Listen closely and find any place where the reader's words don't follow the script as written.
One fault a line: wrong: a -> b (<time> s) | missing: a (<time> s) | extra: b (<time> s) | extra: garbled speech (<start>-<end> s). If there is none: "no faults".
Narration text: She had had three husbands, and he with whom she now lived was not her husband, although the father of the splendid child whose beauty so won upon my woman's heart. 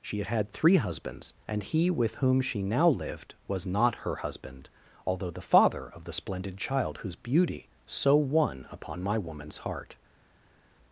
no faults